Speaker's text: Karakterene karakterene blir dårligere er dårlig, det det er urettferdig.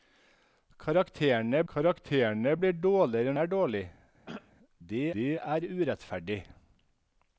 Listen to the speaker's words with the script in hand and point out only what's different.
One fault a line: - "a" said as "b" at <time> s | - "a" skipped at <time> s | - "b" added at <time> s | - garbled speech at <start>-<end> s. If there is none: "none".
none